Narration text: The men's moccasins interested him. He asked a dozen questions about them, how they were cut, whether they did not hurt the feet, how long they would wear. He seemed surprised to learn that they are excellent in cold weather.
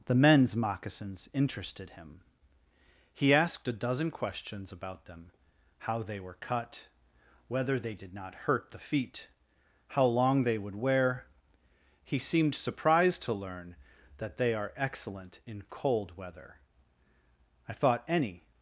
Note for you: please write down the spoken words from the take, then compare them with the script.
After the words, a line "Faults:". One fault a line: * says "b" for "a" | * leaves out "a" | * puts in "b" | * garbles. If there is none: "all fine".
The men's moccasins interested him. He asked a dozen questions about them, how they were cut, whether they did not hurt the feet, how long they would wear. He seemed surprised to learn that they are excellent in cold weather. "I thought ANY
Faults:
* puts in "I thought ANY"